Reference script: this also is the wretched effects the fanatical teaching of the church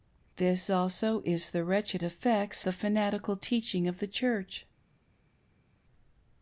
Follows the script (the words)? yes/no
yes